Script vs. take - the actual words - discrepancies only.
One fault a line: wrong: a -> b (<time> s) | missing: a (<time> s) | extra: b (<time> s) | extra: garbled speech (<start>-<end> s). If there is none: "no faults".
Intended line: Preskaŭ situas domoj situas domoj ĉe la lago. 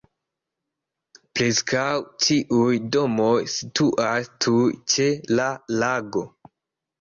wrong: situas -> ĉiuj (2.3 s)
wrong: domoj -> tuj (4.5 s)